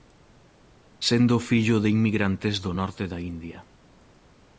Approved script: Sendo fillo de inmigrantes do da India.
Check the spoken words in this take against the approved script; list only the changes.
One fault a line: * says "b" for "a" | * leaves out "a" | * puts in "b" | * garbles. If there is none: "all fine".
* puts in "norte"